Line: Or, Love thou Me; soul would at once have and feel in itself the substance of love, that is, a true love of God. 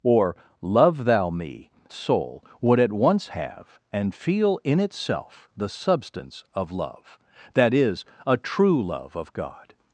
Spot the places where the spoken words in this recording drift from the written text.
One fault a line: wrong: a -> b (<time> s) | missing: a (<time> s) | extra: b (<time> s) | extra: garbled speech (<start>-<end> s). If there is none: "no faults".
no faults